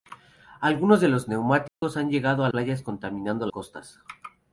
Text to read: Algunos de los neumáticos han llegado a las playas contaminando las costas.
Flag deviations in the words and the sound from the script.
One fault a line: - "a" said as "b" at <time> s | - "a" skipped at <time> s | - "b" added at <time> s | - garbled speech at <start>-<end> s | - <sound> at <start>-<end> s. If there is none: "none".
- dropout at 1.7-1.8 s
- "las" skipped at 2.5 s
- "las" skipped at 3.5 s